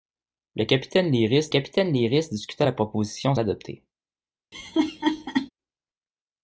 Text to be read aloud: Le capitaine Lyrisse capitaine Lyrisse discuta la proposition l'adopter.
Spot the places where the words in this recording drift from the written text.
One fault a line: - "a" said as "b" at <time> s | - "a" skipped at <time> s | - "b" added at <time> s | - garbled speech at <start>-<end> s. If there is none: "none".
none